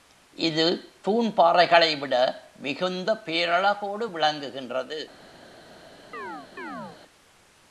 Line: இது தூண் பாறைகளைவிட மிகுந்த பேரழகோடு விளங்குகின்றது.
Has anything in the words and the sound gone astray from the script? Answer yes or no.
yes